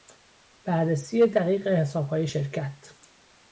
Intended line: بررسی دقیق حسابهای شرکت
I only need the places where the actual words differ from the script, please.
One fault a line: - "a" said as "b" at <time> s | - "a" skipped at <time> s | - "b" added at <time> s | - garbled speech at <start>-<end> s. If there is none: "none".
none